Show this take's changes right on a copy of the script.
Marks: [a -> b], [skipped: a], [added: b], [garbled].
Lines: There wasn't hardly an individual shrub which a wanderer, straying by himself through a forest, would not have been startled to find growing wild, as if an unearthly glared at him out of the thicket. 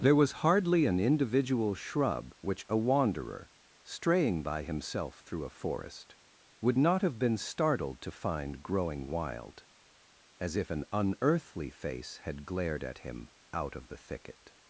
There [wasn't -> was] hardly an individual shrub which a wanderer, straying by himself through a forest, would not have been startled to find growing wild, as if an unearthly [added: face had] glared at him out of the thicket.